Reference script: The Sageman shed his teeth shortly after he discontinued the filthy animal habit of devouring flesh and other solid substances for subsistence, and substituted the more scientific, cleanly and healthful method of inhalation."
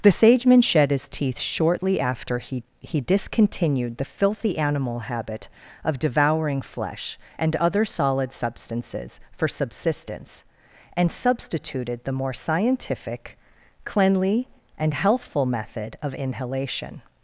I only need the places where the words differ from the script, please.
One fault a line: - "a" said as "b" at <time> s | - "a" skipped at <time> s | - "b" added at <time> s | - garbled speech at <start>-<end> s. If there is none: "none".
- "he" added at 2.8 s